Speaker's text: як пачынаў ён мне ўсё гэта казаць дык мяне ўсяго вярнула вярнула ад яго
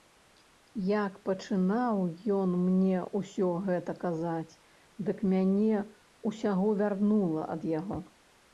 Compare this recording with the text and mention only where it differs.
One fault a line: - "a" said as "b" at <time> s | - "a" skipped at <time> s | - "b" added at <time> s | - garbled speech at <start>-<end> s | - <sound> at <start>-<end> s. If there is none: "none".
- "вярнула" skipped at 7.4 s